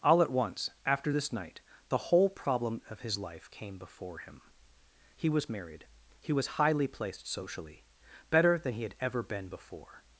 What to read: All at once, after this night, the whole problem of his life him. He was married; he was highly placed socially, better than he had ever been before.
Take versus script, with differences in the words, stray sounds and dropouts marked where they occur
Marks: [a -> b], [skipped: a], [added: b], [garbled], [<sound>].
All at once, after this night, the whole problem of his life [added: came before] him. He was married; he was highly placed socially, better than he had ever been before.